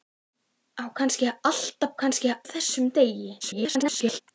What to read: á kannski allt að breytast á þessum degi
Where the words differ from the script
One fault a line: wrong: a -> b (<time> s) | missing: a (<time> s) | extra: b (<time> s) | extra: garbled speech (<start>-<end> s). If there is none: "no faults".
wrong: breytast -> kannski (2.0 s)
extra: garbled speech (3.4-4.2 s)